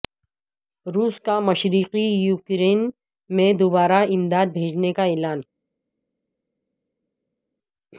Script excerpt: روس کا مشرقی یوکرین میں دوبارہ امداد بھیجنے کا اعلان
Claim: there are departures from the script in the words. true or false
false